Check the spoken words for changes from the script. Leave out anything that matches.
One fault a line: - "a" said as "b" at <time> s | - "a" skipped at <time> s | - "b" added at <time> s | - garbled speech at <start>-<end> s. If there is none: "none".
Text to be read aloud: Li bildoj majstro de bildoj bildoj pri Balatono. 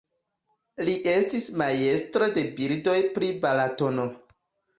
- "bildoj" said as "estis" at 1.1 s
- "bildoj" skipped at 3.0 s